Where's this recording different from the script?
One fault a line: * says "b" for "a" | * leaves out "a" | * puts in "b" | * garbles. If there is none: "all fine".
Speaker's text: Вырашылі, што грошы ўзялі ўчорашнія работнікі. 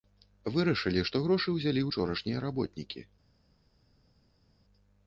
all fine